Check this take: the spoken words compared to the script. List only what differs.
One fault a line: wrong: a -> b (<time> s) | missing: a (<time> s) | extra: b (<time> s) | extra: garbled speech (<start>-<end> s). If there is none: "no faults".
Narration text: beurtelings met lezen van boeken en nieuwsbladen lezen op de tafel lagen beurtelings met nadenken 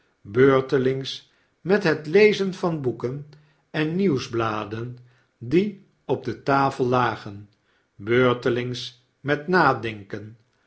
extra: het (1.8 s)
wrong: lezen -> die (5.4 s)